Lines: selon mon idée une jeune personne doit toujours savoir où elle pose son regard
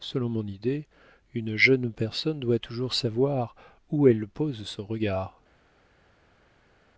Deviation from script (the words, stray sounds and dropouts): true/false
false